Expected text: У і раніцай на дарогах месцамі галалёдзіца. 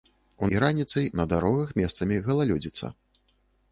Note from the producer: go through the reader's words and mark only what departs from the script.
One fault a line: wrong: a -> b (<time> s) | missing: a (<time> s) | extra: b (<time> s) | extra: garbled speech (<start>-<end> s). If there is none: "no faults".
no faults